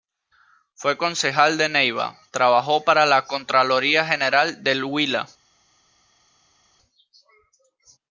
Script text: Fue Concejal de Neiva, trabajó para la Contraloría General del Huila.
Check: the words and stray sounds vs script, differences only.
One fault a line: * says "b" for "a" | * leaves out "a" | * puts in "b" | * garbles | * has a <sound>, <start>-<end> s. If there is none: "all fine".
all fine